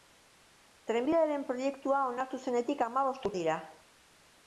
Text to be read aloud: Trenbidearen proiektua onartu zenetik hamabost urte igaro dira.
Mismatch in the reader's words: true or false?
true